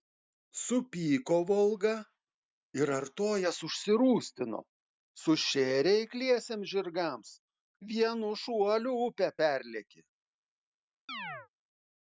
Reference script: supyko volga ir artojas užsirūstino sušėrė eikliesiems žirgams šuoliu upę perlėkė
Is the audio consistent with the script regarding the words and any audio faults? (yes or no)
no